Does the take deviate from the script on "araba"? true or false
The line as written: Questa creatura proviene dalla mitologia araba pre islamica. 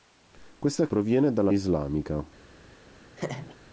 true